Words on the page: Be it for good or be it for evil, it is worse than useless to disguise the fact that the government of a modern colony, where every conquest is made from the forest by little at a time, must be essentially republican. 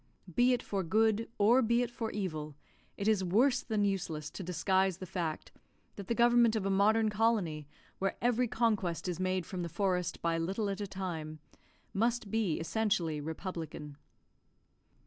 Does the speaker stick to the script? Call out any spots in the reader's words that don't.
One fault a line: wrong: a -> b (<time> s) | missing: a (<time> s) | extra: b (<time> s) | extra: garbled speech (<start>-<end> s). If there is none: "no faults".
no faults